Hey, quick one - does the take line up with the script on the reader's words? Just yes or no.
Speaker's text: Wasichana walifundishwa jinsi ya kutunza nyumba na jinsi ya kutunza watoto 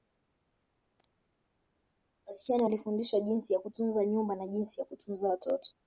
yes